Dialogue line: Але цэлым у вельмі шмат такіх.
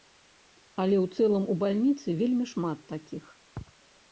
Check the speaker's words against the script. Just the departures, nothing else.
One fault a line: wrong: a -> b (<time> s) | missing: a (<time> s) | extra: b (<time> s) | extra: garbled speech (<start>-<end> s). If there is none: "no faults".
extra: ў (1.0 s)
extra: бальніцы (1.6 s)